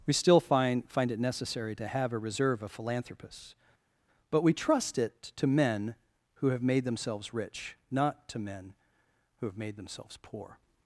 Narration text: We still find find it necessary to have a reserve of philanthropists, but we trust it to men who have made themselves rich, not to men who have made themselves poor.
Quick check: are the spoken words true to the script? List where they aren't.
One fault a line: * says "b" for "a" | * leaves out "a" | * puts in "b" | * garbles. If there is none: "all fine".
all fine